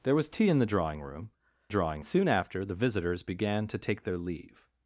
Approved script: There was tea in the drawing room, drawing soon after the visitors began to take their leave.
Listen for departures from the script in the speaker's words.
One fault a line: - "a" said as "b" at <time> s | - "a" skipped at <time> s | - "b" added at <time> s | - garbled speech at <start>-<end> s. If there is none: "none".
none